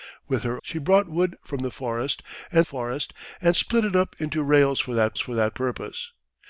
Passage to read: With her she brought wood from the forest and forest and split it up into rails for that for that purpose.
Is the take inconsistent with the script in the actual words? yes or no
no